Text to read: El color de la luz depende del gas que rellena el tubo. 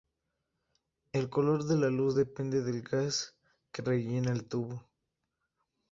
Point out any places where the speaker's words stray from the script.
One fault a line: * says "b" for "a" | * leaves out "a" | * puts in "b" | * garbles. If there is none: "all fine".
all fine